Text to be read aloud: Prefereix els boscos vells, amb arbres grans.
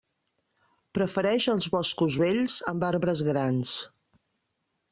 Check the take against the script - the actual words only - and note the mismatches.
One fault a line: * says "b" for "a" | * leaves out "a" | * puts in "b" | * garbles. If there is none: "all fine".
all fine